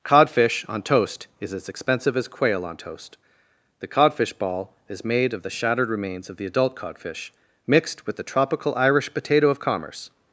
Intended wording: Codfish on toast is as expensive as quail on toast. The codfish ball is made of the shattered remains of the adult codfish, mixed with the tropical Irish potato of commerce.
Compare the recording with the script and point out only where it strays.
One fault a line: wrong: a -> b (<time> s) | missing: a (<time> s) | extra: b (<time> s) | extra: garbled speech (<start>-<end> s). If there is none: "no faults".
no faults